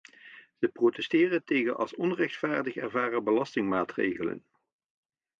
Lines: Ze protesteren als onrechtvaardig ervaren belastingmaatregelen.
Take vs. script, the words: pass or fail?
fail